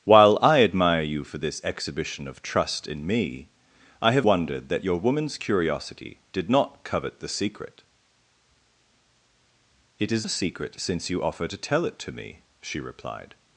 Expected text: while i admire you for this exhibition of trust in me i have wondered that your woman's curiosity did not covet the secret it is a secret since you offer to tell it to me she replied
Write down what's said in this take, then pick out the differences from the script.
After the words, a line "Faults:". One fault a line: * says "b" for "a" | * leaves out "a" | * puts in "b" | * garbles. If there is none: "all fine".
while i admire you for this exhibition of trust in me i have wondered that your woman's curiosity did not covet the secret it is a secret since you offer to tell it to me she replied
Faults:
all fine